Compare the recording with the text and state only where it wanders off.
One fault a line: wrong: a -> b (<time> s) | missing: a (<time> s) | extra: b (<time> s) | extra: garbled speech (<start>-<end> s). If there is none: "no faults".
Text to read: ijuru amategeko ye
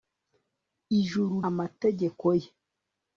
no faults